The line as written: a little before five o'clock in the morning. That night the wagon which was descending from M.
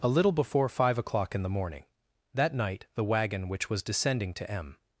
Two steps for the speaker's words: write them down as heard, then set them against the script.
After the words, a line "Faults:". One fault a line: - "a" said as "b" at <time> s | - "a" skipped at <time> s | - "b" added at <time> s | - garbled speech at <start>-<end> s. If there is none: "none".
a little before five o'clock in the morning. That night the wagon which was descending to M.
Faults:
- "from" said as "to" at 4.3 s